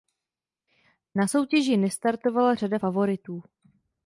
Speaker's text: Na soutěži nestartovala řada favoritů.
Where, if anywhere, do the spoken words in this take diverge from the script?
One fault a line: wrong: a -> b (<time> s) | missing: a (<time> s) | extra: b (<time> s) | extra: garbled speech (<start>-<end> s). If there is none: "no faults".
no faults